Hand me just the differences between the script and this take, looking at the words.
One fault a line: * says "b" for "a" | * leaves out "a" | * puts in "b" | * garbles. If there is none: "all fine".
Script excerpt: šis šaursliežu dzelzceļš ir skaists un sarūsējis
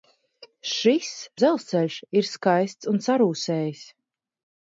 * leaves out "šaursliežu"